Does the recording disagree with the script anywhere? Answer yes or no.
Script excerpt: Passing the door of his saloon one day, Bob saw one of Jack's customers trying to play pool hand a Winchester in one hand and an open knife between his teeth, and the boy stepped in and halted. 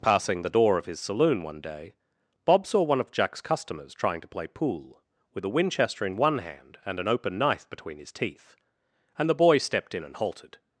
yes